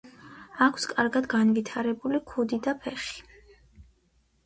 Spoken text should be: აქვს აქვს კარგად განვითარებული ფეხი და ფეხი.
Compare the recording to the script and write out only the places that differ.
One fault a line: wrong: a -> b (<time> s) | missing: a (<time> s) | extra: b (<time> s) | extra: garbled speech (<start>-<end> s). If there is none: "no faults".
missing: აქვს (0.8 s)
wrong: ფეხი -> ქუდი (2.3 s)